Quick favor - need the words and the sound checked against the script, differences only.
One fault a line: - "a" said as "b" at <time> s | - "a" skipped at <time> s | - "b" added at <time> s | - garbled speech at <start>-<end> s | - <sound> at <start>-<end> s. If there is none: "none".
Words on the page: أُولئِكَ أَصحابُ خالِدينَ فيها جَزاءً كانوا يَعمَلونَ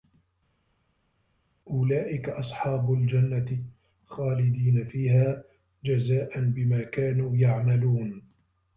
- "الجَنَّةِ" added at 2.9 s
- "بِما" added at 6.4 s